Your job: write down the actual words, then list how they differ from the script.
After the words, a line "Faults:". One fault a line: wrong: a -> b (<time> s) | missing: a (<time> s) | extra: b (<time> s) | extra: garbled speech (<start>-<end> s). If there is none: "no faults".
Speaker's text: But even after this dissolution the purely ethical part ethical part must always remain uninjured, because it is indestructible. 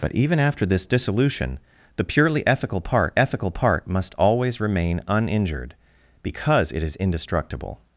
But even after this dissolution the purely ethical part ethical part must always remain uninjured, because it is indestructible.
Faults:
no faults